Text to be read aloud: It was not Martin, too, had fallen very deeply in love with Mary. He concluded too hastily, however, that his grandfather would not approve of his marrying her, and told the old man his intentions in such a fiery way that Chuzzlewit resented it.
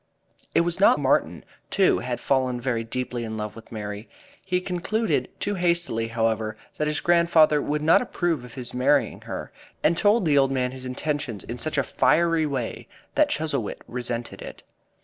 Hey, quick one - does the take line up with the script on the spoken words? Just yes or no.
yes